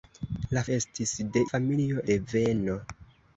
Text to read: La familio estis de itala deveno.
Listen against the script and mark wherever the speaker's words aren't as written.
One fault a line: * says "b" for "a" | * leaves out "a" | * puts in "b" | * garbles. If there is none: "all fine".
* leaves out "familio"
* says "familio" for "itala"